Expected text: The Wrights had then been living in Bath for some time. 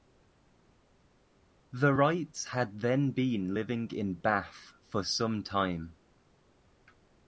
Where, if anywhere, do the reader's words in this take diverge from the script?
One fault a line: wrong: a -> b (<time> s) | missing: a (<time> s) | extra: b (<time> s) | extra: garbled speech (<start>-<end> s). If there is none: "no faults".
no faults